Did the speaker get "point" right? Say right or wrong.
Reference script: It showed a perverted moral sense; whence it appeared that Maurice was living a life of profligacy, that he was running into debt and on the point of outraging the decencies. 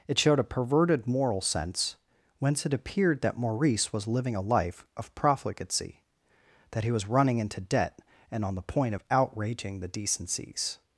right